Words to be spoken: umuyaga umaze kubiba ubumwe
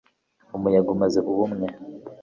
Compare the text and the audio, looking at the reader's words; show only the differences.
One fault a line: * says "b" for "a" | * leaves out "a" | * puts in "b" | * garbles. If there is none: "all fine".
* leaves out "kubiba"